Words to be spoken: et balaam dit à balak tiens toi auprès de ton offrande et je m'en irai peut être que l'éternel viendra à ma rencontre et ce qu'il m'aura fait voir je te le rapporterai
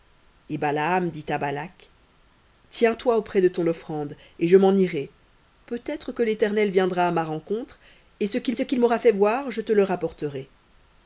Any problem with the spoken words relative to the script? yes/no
yes